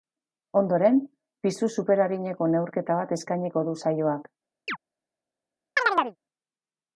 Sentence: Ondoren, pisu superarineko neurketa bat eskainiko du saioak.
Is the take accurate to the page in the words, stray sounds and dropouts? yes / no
no